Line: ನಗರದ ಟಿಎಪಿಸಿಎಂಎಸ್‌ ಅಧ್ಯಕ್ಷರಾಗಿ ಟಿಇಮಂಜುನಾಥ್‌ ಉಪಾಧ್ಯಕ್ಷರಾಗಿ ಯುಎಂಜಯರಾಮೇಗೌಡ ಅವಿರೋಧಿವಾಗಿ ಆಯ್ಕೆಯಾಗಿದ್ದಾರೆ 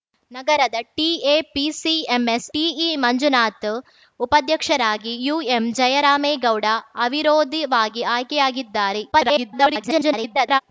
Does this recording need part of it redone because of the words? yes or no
yes